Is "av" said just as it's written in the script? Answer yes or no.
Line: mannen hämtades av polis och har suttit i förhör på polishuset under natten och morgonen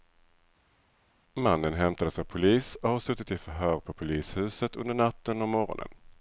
yes